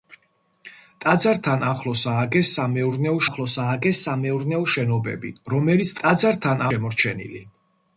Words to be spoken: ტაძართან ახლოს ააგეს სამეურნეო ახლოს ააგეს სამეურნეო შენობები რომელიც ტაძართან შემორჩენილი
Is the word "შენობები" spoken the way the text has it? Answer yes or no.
yes